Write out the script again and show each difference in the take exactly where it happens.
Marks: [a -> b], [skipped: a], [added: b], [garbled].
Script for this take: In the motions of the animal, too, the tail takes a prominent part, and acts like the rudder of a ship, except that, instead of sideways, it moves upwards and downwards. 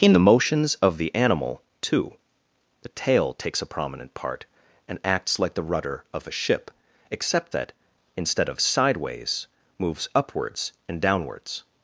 In the motions of the animal, too, the tail takes a prominent part, and acts like the rudder of a ship, except that, instead of sideways, [skipped: it] moves upwards and downwards.